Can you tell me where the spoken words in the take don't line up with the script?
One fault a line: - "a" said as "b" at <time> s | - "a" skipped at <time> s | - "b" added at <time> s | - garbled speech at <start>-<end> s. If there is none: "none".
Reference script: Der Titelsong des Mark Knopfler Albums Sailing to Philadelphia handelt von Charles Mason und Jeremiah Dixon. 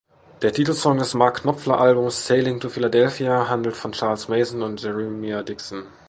none